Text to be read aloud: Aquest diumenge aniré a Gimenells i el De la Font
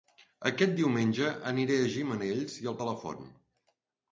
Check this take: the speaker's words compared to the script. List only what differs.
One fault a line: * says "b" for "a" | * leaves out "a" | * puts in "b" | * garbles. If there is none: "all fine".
all fine